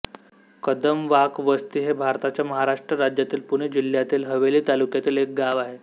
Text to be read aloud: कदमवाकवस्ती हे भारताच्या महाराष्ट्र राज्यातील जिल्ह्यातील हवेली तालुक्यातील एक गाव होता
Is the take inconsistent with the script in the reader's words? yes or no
yes